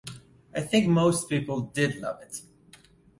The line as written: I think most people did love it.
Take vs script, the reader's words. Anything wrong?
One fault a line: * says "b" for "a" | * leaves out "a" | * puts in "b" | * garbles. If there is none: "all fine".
all fine